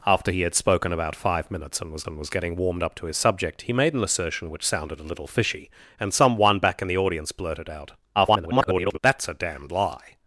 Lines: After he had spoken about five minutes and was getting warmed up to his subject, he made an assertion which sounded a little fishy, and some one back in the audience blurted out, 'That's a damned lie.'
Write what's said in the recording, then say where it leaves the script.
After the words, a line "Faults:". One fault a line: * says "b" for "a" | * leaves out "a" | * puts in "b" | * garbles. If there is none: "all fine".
After he had spoken about five minutes and was and was getting warmed up to his subject, he made an assertion which sounded a little fishy, and some one back in the audience blurted out, [garbled] 'That's a damned lie.'
Faults:
* puts in "and was"
* garbles